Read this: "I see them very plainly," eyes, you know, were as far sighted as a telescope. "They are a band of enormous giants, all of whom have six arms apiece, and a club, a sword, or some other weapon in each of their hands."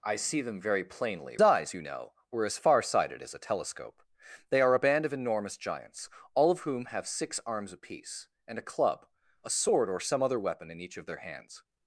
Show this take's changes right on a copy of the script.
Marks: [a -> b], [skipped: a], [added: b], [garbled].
"I see them very plainly," eyes, you know, were as far sighted as a telescope. "They are a band of enormous giants, all of whom have six arms apiece, and a club, a sword, or some other weapon in each of their hands."